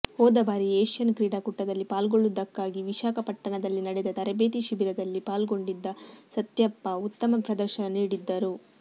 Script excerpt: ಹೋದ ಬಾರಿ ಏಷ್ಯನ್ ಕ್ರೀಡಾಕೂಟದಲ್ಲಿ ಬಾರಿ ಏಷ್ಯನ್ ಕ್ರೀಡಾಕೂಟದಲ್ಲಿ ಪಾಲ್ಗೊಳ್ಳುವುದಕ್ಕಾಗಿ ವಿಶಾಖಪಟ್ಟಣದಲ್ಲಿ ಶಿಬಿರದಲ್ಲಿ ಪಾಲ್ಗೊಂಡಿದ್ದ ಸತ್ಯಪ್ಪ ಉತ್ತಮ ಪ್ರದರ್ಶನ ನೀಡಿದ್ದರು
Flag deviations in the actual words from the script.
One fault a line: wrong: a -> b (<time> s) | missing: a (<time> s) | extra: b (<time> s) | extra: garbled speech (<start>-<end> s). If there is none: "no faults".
wrong: ಬಾರಿ ಏಷ್ಯನ್ ಕ್ರೀಡಾಕೂಟದಲ್ಲಿ ಪಾಲ್ಗೊಳ್ಳುವುದಕ್ಕಾಗಿ ವಿಶಾಖಪಟ್ಟಣದಲ್ಲಿ -> ಪಾಲ್ಗೊಳ್ಳುವುದಕ್ಕಾಗಿ ವಿಶಾಖಪಟ್ಟಣದಲ್ಲಿ ನಡೆದ ತರಬೇತಿ (1.9 s)